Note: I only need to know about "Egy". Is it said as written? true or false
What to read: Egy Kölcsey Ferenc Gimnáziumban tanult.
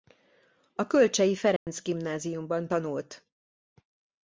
false